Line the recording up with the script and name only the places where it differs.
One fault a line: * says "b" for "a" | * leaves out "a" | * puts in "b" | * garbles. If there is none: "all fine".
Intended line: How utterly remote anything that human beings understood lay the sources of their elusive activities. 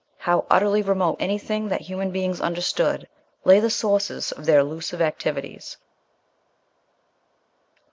all fine